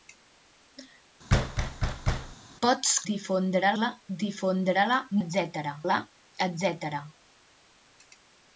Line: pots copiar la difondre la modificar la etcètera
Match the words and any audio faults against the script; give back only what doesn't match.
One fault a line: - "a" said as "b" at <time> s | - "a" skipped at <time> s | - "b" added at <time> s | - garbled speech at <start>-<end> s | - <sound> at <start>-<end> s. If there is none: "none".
- thud at 1.3-2.4 s
- "copiar" said as "difondre" at 3.1 s
- "modificar" said as "etcètera" at 5.2 s